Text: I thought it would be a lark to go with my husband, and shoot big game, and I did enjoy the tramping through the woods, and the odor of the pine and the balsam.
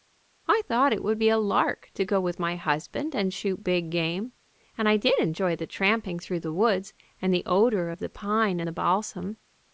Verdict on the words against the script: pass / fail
fail